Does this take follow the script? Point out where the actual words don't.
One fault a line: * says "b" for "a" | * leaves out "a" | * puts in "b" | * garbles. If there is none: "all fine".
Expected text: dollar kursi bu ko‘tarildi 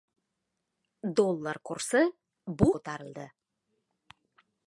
all fine